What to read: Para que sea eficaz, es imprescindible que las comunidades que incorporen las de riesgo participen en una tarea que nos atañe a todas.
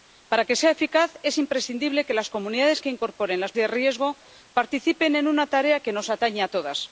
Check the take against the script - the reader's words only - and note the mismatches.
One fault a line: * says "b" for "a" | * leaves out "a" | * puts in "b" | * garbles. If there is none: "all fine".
all fine